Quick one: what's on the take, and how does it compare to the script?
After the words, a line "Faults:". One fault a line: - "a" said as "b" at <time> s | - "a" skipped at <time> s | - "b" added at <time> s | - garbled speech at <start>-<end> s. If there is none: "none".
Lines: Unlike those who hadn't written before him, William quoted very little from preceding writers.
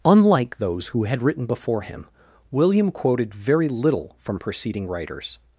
Unlike those who had written before him, William quoted very little from preceding writers.
Faults:
- "hadn't" said as "had" at 1.0 s